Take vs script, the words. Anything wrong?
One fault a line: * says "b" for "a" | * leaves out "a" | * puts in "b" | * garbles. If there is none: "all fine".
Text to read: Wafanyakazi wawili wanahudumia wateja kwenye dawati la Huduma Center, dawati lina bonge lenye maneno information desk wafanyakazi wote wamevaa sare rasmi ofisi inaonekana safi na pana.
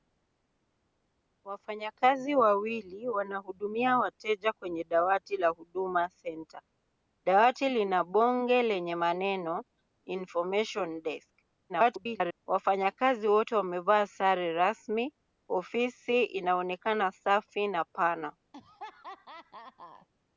* garbles